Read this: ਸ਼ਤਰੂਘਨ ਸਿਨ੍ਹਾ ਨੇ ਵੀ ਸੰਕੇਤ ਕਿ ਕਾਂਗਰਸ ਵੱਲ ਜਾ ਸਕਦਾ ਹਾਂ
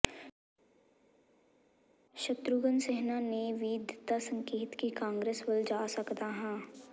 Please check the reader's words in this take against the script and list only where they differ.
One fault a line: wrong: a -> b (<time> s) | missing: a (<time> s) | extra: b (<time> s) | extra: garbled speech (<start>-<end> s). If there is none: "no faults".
extra: ਦਿੱਤਾ (3.8 s)